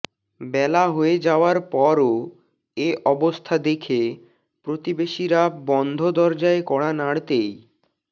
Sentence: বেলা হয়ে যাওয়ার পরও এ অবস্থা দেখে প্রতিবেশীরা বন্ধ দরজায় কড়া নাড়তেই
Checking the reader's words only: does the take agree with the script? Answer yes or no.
yes